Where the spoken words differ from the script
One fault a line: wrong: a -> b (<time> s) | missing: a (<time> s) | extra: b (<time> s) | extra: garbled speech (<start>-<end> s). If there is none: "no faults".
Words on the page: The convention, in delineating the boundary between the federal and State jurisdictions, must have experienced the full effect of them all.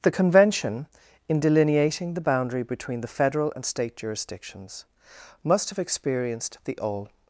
missing: full effect of them (6.8 s)